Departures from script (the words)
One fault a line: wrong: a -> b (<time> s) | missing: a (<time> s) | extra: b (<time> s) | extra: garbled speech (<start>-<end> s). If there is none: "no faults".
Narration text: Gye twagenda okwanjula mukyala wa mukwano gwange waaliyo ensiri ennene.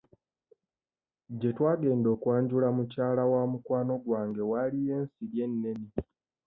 no faults